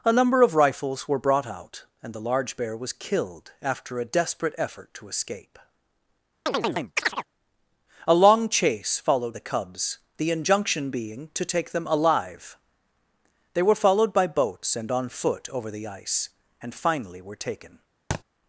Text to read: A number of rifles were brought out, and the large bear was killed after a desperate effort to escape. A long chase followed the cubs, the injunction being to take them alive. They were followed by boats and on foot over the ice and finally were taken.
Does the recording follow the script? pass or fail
pass